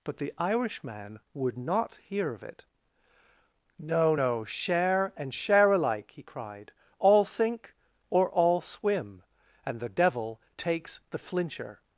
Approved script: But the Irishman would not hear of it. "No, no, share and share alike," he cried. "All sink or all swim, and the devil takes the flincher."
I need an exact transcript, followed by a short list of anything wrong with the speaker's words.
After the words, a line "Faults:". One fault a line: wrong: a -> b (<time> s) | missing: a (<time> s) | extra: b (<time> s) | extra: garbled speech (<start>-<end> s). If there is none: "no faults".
But the Irishman would not hear of it. "No, no, share and share alike," he cried. "All sink or all swim, and the devil takes the flincher."
Faults:
no faults